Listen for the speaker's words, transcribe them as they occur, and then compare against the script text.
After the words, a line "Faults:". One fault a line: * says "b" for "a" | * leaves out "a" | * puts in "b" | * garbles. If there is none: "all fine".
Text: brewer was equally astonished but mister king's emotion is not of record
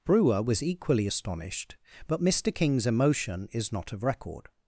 brewer was equally astonished but mister king's emotion is not of record
Faults:
all fine